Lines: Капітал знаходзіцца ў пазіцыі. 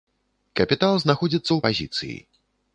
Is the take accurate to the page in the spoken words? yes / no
yes